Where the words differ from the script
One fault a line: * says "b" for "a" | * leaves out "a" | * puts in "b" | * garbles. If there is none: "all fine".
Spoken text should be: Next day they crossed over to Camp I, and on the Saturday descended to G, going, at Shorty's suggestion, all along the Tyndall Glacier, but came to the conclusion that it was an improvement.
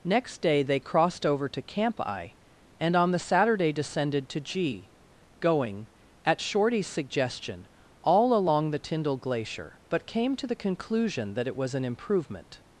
all fine